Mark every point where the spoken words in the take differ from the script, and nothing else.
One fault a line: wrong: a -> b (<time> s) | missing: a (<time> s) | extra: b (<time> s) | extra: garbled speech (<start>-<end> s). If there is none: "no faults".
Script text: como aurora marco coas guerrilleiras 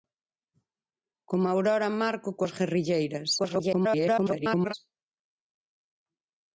extra: garbled speech (3.4-4.7 s)